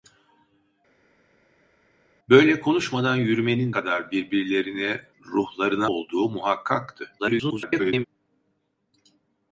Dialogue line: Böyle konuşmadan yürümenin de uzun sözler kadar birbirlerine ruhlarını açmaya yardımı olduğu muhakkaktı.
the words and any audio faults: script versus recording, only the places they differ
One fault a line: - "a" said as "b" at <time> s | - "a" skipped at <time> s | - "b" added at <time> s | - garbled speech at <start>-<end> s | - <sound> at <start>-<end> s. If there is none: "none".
- "de uzun sözler" skipped at 3.7 s
- "açmaya yardımı" skipped at 5.9 s
- garbled speech at 7.2-8.0 s